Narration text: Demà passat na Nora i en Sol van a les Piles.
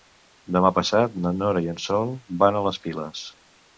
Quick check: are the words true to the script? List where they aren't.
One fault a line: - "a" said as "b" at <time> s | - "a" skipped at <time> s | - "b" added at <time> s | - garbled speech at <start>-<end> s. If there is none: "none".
none